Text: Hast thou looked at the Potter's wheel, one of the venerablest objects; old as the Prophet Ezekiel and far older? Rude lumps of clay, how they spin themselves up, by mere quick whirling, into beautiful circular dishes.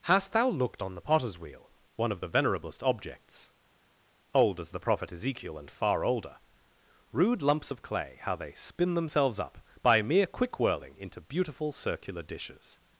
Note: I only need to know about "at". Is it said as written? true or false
false